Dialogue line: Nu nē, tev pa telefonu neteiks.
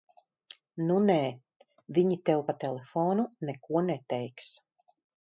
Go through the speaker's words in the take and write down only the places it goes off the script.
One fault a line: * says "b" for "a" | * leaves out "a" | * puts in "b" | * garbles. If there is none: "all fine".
* puts in "viņi"
* puts in "neko"